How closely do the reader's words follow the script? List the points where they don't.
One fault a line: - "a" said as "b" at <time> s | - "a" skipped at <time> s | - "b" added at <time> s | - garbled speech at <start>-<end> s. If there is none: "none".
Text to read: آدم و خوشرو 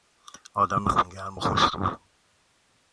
- "خونگرم" added at 0.9 s